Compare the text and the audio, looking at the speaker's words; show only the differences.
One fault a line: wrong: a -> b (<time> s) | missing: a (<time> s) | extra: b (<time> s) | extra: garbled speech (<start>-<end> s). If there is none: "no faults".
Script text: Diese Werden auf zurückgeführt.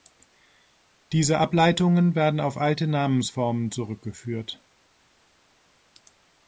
extra: Ableitungen (1.3 s)
extra: alte Namensformen (2.6 s)